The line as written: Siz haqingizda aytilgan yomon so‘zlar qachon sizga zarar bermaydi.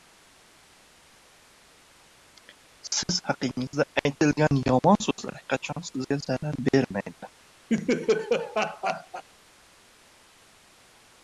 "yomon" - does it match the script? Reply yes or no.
yes